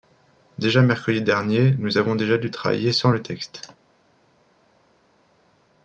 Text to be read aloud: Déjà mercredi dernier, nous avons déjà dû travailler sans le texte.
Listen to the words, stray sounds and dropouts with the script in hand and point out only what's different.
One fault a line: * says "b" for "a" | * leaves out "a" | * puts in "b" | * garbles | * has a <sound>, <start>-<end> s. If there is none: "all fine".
all fine